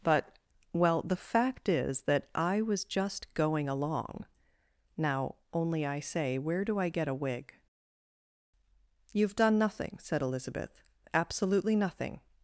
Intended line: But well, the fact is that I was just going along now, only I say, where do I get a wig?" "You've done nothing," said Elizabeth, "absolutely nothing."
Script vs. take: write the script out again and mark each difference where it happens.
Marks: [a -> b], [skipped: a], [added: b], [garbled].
But well, the fact is that I was just going along now, only I say, where do I get a wig?" "You've done nothing," said Elizabeth, "absolutely nothing."